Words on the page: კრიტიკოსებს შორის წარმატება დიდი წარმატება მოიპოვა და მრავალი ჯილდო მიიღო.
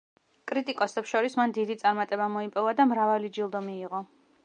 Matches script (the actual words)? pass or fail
fail